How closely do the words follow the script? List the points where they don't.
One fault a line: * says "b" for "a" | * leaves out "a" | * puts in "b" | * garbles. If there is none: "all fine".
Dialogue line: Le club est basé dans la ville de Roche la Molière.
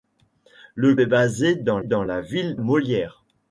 * leaves out "club"
* puts in "dans"
* leaves out "de Roche la"